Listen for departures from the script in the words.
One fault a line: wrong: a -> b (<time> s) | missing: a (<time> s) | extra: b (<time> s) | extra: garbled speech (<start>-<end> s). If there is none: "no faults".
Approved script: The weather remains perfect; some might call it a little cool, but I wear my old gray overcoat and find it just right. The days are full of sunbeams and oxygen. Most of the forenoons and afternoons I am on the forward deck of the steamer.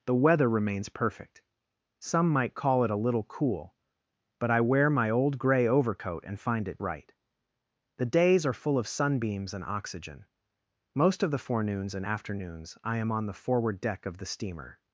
missing: just (6.8 s)